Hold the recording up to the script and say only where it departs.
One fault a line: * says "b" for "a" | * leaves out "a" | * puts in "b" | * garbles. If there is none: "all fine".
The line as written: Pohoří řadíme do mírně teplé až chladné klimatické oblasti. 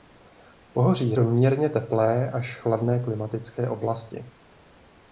* leaves out "řadíme"